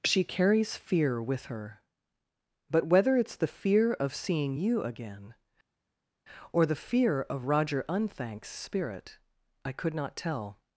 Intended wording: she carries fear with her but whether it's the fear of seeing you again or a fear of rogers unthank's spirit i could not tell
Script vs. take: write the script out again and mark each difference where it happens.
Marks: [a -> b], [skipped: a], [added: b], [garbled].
she carries fear with her but whether it's the fear of seeing you again or [a -> the] fear of [rogers -> roger] unthank's spirit i could not tell